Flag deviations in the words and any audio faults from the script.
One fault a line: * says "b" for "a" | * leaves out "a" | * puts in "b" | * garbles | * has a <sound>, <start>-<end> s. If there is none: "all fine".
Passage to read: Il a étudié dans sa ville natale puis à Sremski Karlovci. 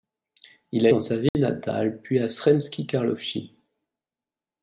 * leaves out "étudié"
* has a dropout, 1.3-1.3 s